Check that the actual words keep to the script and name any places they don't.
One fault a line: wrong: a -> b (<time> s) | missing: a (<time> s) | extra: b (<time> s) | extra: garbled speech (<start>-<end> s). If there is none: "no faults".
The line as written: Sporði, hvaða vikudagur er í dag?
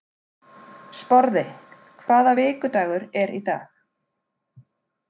no faults